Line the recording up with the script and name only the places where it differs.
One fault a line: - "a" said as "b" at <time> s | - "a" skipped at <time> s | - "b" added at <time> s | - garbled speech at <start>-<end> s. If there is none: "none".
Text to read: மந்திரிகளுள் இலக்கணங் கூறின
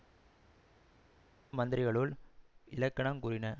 none